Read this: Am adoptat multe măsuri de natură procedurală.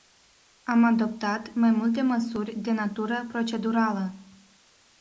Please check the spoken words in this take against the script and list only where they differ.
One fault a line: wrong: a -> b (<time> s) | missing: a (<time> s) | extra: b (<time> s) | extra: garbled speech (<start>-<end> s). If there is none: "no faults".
extra: mai (1.5 s)